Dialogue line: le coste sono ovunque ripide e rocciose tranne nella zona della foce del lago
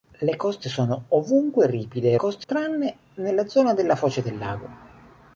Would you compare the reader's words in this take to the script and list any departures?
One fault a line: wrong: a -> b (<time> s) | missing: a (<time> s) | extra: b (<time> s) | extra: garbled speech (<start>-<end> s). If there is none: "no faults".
wrong: rocciose -> coste (2.1 s)